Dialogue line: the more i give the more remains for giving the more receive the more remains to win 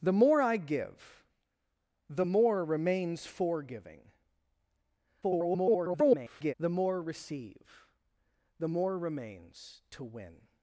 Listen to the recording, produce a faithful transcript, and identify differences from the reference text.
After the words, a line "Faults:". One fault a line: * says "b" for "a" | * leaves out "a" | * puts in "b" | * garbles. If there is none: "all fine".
the more i give the more remains for giving [garbled] the more receive the more remains to win
Faults:
* garbles